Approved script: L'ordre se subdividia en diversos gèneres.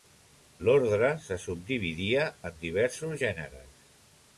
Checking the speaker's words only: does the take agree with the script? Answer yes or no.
yes